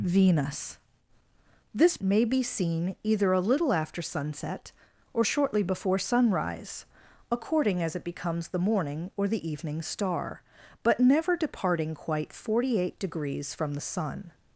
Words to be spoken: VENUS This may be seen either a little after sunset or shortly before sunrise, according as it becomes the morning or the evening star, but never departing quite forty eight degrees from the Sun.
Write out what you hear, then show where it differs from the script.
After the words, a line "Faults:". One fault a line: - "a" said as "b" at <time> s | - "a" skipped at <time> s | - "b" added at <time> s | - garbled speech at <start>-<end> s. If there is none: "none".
VENUS This may be seen either a little after sunset or shortly before sunrise, according as it becomes the morning or the evening star, but never departing quite forty eight degrees from the Sun.
Faults:
none